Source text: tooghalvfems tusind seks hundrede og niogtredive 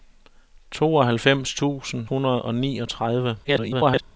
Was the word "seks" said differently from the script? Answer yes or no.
yes